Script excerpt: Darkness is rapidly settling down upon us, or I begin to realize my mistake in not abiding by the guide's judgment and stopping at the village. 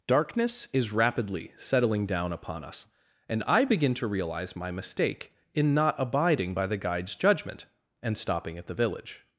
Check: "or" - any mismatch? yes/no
yes